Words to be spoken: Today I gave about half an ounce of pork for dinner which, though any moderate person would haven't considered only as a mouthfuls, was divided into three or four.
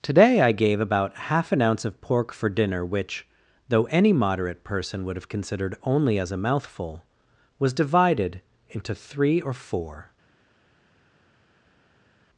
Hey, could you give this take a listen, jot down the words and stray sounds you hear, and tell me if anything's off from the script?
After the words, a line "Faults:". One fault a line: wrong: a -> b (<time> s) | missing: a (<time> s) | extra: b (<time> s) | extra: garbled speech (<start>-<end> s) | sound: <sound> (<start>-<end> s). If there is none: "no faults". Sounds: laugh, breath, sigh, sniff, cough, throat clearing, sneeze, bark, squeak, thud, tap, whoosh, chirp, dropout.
Today I gave about half an ounce of pork for dinner which, though any moderate person would have considered only as a mouthful, was divided into three or four.
Faults:
wrong: haven't -> have (5.2 s)
wrong: mouthfuls -> mouthful (6.4 s)